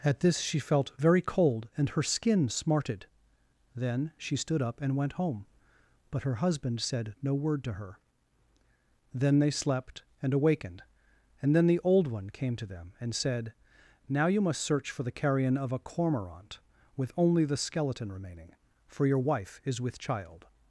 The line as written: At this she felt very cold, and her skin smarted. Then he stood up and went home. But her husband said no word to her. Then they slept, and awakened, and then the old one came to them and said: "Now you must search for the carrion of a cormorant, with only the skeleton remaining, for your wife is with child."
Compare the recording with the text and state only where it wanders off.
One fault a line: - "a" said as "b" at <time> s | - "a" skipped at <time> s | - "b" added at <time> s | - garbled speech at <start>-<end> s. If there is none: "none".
- "he" said as "she" at 4.2 s